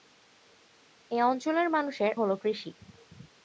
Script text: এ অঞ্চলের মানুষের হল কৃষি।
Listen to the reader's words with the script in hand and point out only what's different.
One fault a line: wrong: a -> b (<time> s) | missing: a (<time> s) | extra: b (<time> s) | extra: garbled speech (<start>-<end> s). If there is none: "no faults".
no faults